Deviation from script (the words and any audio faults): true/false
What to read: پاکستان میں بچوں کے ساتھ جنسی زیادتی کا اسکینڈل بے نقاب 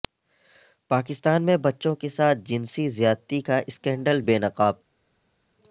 false